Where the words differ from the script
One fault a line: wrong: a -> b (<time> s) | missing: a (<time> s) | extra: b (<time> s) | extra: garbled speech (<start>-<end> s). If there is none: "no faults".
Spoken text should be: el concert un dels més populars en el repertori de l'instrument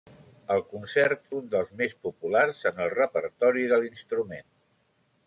no faults